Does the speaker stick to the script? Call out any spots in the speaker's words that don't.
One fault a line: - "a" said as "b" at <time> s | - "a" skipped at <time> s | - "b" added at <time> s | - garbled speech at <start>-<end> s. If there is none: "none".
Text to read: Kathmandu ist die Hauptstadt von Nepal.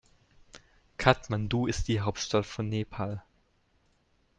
none